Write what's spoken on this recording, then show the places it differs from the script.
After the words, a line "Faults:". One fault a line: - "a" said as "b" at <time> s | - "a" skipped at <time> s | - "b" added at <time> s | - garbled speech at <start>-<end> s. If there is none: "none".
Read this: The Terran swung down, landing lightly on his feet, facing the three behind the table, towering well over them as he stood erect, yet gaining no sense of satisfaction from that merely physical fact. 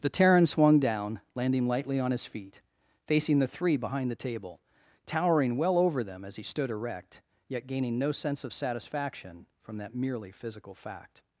The Terran swung down, landing lightly on his feet, facing the three behind the table, towering well over them as he stood erect, yet gaining no sense of satisfaction from that merely physical fact.
Faults:
none